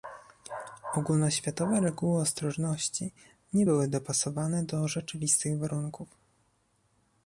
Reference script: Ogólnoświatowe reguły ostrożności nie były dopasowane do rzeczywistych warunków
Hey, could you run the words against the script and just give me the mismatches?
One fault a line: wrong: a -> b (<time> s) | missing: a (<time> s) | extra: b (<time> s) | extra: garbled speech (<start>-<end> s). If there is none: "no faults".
no faults